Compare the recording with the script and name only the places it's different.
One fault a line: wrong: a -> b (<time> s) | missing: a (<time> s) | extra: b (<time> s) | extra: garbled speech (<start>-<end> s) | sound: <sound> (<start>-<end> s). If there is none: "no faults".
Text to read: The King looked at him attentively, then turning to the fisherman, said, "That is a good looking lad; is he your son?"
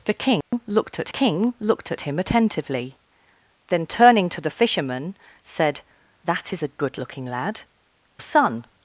sound: dropout (0.4-0.5 s)
extra: King looked at (1.1 s)
missing: is he your (7.6 s)